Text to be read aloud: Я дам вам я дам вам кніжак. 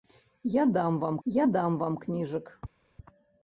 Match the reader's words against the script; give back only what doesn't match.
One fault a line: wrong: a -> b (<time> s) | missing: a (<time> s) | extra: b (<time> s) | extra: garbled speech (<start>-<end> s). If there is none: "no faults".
no faults